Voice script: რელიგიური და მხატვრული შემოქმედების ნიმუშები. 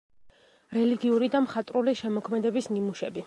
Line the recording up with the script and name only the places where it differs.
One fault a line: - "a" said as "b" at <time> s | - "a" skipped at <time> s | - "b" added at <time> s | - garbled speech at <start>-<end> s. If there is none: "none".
none